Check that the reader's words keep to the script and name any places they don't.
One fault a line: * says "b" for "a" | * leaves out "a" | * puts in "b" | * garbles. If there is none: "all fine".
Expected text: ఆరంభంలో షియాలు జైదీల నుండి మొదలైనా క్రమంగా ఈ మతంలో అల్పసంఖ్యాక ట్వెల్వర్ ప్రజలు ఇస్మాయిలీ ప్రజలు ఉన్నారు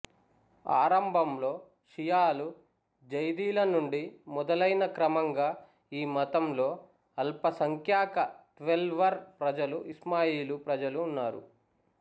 all fine